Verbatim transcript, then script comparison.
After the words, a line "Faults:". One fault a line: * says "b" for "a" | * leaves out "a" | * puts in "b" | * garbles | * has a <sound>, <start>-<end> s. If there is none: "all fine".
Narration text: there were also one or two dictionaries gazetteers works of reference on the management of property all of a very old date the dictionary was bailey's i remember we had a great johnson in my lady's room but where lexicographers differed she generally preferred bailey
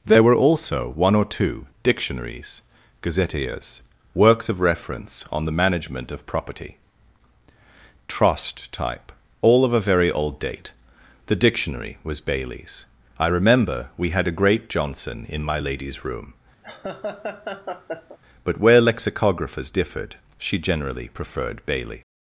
there were also one or two dictionaries gazetteers works of reference on the management of property trust type all of a very old date the dictionary was bailey's i remember we had a great johnson in my lady's room but where lexicographers differed she generally preferred bailey
Faults:
* puts in "trust type"
* has a laugh, 16.6-18.2 s